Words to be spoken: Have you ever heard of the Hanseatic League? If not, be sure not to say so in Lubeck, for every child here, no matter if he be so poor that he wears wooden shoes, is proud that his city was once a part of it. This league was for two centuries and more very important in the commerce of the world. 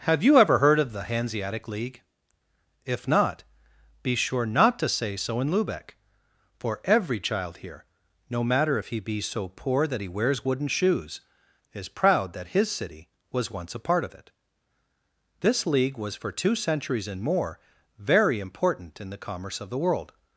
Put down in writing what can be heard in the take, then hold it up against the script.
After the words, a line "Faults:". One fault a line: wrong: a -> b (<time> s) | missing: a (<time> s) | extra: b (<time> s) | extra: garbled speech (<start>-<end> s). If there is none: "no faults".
Have you ever heard of the Hanseatic League? If not, be sure not to say so in Lubeck, for every child here, no matter if he be so poor that he wears wooden shoes, is proud that his city was once a part of it. This league was for two centuries and more very important in the commerce of the world.
Faults:
no faults